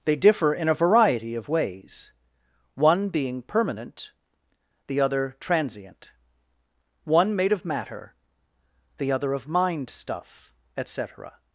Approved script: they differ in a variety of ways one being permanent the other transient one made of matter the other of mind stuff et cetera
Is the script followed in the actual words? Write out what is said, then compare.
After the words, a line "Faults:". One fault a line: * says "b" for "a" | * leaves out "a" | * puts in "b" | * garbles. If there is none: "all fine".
they differ in a variety of ways one being permanent the other transient one made of matter the other of mind stuff et cetera
Faults:
all fine